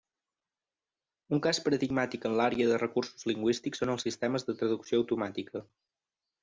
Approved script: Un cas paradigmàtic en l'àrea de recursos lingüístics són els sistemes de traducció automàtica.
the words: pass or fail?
pass